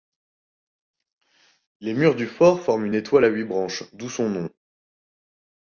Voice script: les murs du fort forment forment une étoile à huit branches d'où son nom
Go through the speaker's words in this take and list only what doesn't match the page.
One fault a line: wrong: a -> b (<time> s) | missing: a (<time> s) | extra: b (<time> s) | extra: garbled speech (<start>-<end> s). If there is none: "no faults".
missing: forment (2.9 s)